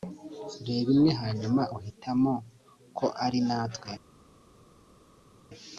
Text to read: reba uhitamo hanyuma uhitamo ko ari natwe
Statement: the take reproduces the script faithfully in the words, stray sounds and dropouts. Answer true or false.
false